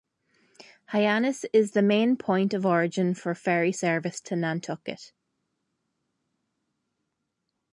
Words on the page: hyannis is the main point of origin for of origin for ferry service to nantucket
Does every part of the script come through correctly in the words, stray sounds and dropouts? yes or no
no